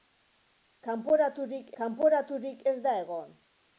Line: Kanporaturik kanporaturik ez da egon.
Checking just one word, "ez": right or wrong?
right